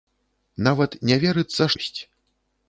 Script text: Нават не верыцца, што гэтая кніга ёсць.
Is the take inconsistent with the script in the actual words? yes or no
yes